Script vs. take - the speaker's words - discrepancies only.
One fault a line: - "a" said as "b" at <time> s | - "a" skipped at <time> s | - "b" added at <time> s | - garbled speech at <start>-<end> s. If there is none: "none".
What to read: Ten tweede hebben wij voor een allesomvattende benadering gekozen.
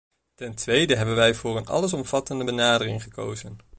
none